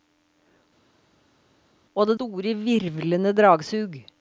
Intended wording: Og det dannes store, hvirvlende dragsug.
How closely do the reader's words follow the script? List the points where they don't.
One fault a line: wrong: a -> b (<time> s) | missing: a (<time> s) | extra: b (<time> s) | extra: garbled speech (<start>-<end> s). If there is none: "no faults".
missing: dannes (2.2 s)